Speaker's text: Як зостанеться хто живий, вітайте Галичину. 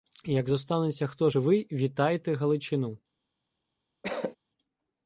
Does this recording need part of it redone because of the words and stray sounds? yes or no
yes